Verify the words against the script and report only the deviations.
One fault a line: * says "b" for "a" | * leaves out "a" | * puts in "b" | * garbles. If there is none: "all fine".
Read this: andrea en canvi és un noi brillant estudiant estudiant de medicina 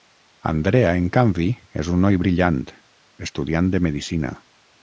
* leaves out "estudiant"